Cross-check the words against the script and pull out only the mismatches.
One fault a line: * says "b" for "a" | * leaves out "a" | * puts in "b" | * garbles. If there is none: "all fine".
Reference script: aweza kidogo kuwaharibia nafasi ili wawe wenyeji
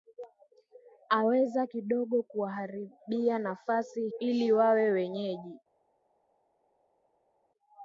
all fine